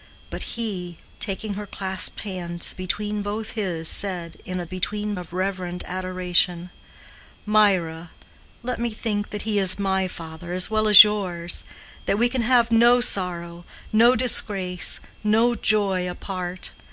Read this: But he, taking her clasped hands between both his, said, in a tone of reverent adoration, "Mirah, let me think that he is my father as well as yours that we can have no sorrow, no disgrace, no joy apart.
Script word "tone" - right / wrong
wrong